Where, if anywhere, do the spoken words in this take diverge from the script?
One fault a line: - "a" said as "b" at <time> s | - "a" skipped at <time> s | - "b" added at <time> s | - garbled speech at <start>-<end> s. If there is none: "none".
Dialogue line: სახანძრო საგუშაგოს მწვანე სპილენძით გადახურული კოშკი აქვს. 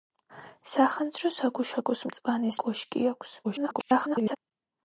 - "სპილენძით გადახურული" skipped at 2.5 s
- garbled speech at 3.4-4.4 s